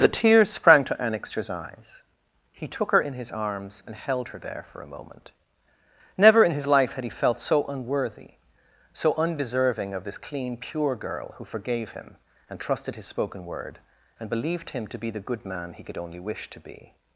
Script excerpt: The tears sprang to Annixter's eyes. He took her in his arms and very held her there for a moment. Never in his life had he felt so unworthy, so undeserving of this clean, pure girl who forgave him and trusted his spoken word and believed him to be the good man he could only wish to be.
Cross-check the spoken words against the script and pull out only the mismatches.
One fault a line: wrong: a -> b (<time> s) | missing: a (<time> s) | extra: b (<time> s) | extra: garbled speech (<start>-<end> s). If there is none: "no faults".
missing: very (3.9 s)